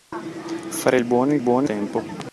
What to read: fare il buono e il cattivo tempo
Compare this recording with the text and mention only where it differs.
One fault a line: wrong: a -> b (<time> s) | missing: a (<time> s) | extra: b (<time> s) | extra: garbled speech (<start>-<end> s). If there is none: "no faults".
wrong: cattivo -> buono (1.4 s)